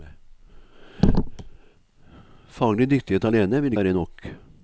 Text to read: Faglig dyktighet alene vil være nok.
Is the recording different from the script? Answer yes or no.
no